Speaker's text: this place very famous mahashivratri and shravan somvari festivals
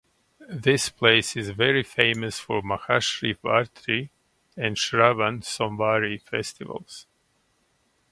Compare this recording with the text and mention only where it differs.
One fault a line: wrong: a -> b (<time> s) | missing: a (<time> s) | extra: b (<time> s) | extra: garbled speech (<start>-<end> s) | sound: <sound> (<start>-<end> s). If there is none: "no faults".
extra: is (1.4 s)
extra: for (2.4 s)